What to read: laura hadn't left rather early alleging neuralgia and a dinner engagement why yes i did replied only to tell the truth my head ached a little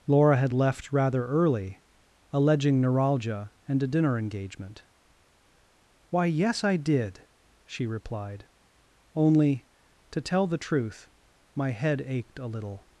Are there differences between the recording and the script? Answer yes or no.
yes